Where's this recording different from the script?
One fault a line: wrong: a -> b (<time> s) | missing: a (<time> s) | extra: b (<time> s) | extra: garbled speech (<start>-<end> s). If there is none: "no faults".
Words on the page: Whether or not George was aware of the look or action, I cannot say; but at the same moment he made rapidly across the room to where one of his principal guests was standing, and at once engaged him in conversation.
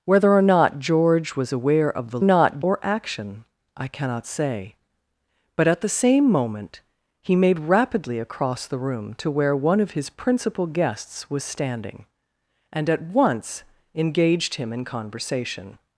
wrong: look -> not (2.2 s)